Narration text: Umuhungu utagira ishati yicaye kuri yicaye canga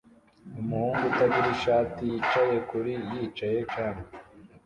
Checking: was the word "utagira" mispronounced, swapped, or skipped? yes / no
no